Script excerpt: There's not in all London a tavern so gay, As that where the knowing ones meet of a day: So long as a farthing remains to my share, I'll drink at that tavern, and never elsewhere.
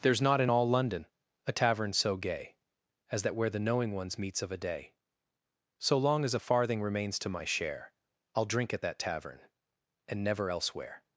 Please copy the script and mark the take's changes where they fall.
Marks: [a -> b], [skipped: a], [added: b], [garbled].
There's not in all London a tavern so gay, As that where the knowing ones [meet -> meets] of a day: So long as a farthing remains to my share, I'll drink at that tavern, and never elsewhere.